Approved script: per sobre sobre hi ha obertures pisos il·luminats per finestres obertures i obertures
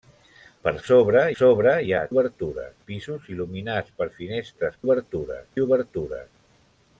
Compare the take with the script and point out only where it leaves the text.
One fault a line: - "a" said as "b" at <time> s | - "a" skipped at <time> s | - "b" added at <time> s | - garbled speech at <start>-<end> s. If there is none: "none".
none